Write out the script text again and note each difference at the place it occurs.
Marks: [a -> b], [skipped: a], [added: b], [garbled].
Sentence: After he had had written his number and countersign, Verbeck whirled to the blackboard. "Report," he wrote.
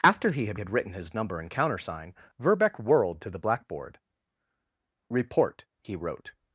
After he had had written his number and countersign, Verbeck whirled to the blackboard. "Report," he wrote.